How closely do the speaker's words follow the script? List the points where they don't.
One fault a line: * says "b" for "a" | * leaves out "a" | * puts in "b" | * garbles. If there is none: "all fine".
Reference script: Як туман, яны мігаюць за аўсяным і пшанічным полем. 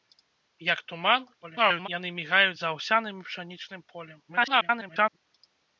* garbles
* garbles